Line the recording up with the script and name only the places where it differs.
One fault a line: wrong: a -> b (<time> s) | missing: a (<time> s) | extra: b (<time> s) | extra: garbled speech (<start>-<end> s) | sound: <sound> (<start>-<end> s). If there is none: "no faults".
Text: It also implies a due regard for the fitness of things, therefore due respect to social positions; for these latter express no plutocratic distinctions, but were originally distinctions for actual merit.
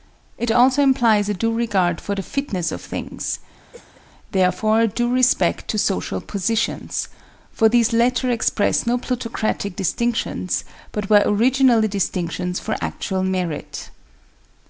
sound: cough (3.7-4.0 s)